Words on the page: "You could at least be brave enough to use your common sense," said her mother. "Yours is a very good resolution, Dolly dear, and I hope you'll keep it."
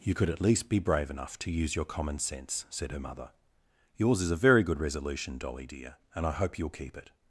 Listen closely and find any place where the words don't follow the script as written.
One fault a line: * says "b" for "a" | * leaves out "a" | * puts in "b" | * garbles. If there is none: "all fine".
all fine